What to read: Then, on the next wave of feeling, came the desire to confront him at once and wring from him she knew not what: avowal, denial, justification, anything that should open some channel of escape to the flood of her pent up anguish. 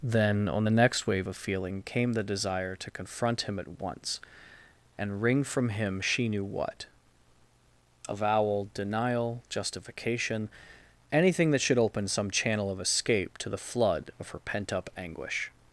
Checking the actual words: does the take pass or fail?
fail